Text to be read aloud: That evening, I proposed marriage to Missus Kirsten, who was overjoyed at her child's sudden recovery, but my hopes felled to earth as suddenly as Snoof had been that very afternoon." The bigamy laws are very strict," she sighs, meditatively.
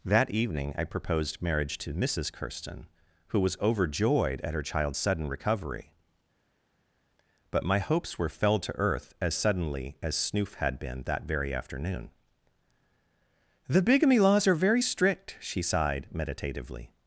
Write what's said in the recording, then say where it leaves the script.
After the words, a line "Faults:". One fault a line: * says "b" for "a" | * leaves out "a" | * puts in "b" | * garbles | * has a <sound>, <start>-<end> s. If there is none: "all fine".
That evening, I proposed marriage to Missus Kirsten, who was overjoyed at her child's sudden recovery, but my hopes were felled to earth as suddenly as Snoof had been that very afternoon." The bigamy laws are very strict," she sighed, meditatively.
Faults:
* puts in "were"
* says "sighed" for "sighs"